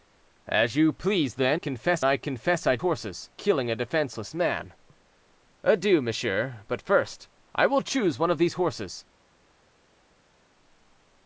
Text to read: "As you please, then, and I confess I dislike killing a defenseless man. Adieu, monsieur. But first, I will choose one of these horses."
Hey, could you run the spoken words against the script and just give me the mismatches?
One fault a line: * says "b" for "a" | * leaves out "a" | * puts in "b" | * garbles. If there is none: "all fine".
* says "confess" for "and"
* says "horses" for "dislike"